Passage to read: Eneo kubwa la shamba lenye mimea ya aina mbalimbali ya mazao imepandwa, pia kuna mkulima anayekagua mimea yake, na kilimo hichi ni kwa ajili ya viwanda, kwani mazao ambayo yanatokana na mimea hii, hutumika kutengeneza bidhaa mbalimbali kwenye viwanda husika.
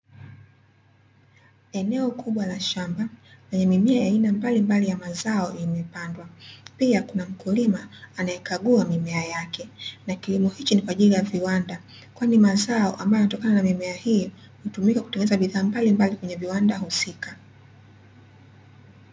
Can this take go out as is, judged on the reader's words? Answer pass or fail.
pass